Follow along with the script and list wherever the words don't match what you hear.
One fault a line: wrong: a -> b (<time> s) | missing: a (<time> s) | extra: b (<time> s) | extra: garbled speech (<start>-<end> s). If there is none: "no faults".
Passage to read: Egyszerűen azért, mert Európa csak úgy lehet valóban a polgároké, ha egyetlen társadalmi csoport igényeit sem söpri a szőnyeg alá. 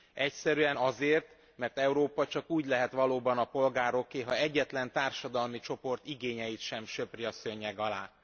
no faults